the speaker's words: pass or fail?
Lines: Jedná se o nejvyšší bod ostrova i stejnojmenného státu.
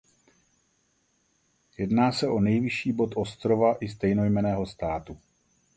pass